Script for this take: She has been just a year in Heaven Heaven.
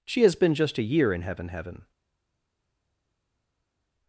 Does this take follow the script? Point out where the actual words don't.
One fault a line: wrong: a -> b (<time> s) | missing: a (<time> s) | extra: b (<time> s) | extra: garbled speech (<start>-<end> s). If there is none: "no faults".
no faults